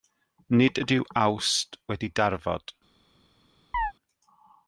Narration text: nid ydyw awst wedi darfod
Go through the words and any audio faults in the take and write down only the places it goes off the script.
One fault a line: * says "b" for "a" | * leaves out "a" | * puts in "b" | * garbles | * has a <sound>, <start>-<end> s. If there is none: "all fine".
* has a chirp, 3.7-3.9 s